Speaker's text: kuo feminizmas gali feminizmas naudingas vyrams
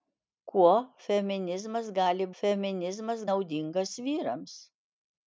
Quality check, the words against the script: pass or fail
pass